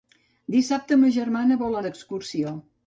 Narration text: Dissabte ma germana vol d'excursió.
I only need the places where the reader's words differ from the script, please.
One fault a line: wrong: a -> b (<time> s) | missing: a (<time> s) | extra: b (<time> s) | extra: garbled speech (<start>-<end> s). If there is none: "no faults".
no faults